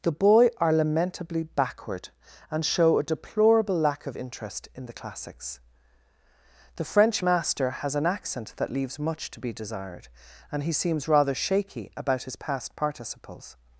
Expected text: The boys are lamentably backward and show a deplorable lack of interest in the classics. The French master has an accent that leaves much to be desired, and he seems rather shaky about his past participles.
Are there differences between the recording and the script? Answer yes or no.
yes